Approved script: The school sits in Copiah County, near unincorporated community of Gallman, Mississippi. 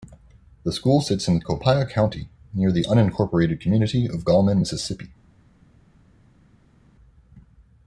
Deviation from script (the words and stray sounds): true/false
true